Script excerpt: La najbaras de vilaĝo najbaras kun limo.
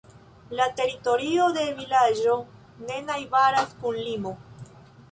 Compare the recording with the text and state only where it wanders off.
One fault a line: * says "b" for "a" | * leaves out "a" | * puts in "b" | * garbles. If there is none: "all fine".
* says "teritorio" for "najbaras"
* puts in "ne"